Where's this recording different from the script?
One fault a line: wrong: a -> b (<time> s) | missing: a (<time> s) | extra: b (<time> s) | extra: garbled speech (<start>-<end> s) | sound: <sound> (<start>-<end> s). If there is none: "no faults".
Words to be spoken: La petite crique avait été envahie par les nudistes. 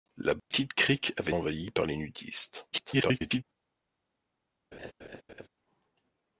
sound: dropout (0.4-0.5 s)
missing: été (1.3 s)
extra: garbled speech (2.7-3.4 s)
sound: laugh (4.7-5.5 s)